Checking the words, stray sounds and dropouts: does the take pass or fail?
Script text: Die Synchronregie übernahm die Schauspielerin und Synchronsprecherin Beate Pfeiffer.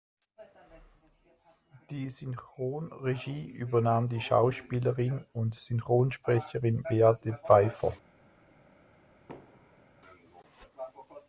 fail